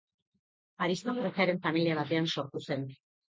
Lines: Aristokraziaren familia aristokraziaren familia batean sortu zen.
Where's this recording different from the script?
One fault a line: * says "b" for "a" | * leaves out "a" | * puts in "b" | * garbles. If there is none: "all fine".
* leaves out "aristokraziaren familia"